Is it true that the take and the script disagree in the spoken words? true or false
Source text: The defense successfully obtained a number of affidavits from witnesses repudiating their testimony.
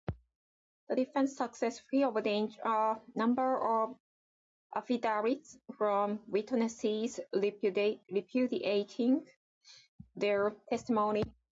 false